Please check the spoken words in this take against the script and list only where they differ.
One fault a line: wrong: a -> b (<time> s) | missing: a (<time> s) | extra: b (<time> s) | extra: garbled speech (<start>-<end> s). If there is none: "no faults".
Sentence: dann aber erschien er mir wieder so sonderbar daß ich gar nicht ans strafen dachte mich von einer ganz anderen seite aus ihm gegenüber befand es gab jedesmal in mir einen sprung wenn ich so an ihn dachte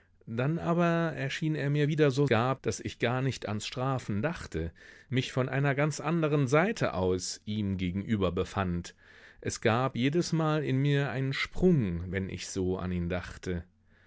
wrong: sonderbar -> gab (2.3 s)